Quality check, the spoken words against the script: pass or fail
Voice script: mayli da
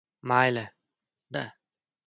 pass